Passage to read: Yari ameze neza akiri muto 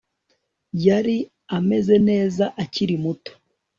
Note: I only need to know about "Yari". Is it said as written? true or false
true